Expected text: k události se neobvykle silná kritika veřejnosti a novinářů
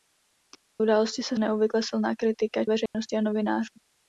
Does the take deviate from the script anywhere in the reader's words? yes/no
no